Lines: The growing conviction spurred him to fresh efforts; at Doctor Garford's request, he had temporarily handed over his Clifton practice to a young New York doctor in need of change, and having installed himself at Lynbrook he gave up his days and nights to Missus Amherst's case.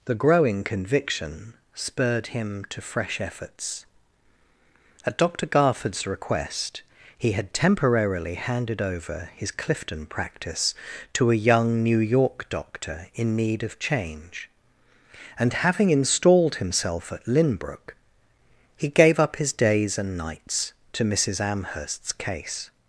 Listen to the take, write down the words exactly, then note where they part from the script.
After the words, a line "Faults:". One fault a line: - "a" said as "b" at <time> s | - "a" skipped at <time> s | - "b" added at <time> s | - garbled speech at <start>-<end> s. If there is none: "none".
The growing conviction spurred him to fresh efforts; at Doctor Garford's request, he had temporarily handed over his Clifton practice to a young New York doctor in need of change, and having installed himself at Lynbrook he gave up his days and nights to Missus Amherst's case.
Faults:
none